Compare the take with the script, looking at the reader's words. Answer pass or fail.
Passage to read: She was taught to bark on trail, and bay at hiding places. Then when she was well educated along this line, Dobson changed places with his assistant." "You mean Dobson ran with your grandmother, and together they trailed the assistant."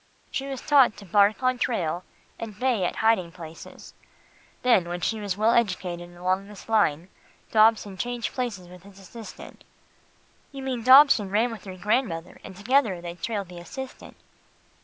pass